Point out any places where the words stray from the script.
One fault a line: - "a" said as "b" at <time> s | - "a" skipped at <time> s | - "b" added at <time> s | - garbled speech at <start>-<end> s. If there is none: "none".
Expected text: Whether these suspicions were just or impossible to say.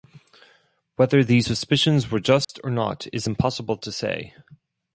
- "not is" added at 2.7 s